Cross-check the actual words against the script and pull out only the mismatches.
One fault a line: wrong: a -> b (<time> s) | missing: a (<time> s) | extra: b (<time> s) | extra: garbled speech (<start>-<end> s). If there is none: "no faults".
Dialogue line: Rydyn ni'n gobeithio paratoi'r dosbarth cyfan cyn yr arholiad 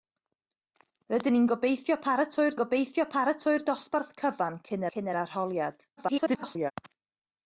extra: gobeithio paratoi'r (2.6 s)
extra: cyn (4.9 s)
extra: garbled speech (6.0-6.7 s)